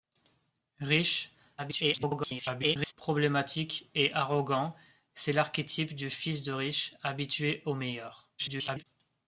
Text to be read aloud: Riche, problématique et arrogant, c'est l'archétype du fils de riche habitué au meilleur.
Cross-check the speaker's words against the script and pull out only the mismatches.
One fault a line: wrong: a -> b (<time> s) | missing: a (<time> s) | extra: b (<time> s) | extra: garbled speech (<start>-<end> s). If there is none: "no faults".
extra: garbled speech (1.6-2.9 s)
extra: garbled speech (8.4-8.8 s)